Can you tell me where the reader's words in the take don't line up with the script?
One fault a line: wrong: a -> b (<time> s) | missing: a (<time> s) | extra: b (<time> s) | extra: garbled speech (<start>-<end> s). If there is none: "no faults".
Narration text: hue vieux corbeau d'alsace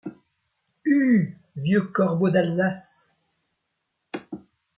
no faults